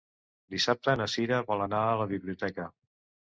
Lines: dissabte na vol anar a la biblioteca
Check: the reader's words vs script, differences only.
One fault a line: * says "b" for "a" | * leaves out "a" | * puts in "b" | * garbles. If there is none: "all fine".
* puts in "cira"